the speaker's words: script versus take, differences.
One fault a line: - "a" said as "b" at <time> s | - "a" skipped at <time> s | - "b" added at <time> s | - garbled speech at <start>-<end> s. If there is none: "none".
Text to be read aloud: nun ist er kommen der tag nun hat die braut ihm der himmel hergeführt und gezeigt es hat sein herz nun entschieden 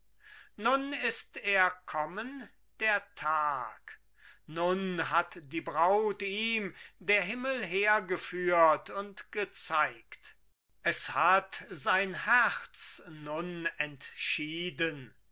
none